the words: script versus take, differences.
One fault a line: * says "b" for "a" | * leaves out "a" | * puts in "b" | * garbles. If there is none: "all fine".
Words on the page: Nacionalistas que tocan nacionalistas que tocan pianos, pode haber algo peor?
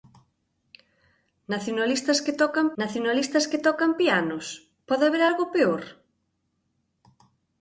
all fine